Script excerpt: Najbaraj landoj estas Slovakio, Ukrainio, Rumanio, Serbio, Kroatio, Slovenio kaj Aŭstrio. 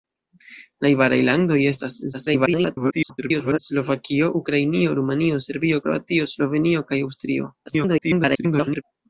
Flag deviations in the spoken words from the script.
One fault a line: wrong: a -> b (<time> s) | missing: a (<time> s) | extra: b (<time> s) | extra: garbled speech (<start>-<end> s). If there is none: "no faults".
extra: garbled speech (2.1-3.6 s)
extra: garbled speech (7.7-8.8 s)